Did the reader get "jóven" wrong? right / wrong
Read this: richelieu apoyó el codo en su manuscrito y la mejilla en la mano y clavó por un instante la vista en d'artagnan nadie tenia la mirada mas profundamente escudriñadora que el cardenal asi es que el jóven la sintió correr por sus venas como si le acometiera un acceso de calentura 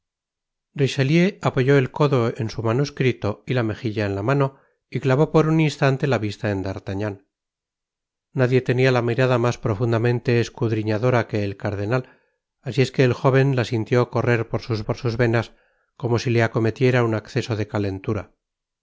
right